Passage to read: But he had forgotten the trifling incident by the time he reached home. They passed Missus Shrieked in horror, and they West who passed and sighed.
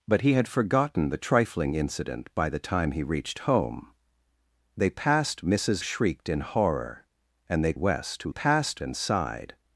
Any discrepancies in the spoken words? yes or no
no